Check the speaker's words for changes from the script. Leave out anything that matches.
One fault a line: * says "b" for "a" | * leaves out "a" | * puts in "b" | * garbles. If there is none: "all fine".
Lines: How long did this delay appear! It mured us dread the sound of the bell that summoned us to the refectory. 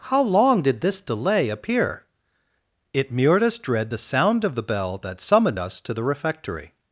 all fine